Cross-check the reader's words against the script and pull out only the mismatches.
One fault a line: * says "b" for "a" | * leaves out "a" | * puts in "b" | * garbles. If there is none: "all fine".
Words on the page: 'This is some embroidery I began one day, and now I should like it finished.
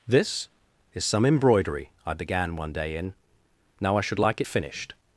* says "in" for "and"